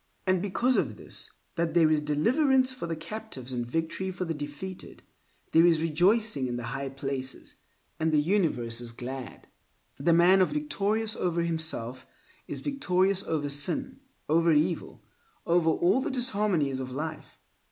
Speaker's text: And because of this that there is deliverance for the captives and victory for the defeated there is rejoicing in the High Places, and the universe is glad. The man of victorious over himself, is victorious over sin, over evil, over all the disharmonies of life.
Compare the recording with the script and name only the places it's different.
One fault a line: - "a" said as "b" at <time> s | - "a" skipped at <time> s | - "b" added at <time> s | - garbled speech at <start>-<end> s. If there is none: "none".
none